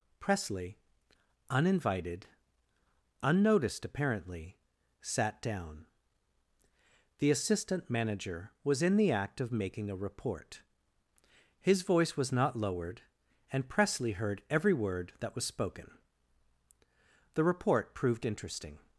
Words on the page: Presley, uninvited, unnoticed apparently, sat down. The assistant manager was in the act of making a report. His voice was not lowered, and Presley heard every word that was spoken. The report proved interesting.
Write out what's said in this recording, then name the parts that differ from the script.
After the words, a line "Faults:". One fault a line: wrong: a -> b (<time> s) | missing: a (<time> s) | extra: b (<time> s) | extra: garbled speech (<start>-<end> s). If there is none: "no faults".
Presley, uninvited, unnoticed apparently, sat down. The assistant manager was in the act of making a report. His voice was not lowered, and Presley heard every word that was spoken. The report proved interesting.
Faults:
no faults